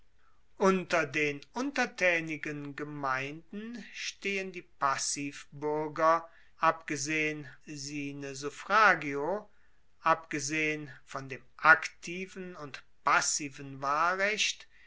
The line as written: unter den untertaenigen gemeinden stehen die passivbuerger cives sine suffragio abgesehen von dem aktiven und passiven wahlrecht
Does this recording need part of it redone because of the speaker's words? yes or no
yes